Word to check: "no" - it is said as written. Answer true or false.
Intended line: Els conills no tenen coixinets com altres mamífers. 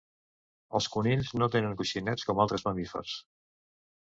true